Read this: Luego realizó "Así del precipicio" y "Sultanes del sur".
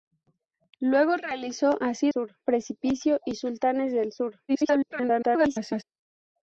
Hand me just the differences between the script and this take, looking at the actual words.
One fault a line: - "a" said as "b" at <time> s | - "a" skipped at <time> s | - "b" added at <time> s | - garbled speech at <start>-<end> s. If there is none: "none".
- "del" said as "sur" at 2.1 s
- garbled speech at 4.5-5.8 s